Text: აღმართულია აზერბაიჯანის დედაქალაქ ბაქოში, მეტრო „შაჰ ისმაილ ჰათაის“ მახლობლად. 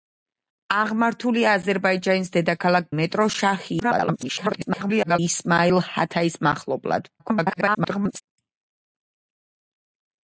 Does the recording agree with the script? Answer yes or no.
no